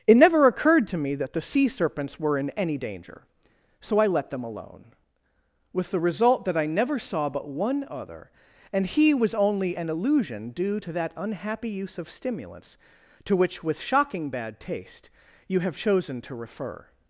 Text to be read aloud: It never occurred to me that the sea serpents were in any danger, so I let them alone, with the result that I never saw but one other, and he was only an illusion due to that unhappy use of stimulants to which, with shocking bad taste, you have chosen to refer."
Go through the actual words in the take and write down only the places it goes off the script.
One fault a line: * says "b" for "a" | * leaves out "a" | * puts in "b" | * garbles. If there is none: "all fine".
all fine